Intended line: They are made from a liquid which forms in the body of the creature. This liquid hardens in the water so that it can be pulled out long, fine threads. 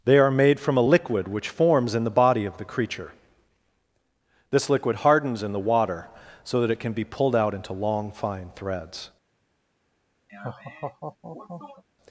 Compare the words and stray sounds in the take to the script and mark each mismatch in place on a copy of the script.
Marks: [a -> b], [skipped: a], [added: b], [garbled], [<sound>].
They are made from a liquid which forms in the body of the creature. This liquid hardens in the water so that it can be pulled out [added: into] long, fine threads. [laugh]